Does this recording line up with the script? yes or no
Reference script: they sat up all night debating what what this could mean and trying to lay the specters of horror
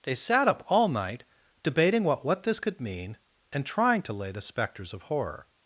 yes